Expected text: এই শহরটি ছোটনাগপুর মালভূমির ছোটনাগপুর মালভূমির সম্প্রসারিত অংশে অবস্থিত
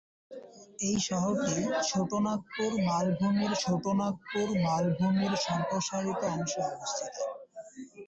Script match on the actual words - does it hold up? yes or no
yes